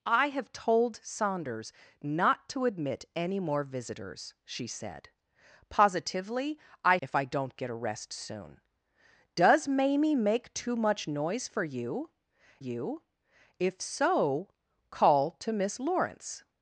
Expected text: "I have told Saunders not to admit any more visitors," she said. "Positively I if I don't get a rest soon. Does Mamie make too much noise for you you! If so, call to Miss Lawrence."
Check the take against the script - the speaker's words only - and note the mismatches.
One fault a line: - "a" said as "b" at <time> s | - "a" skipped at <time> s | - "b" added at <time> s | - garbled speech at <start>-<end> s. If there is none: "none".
none